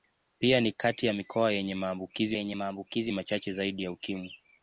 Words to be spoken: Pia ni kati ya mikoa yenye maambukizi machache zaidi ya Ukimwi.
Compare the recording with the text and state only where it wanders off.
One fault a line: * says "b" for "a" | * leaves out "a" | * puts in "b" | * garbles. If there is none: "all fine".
* puts in "yenye maambukizi"